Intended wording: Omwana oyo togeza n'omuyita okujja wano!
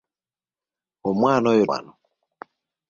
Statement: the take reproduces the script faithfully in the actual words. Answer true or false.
false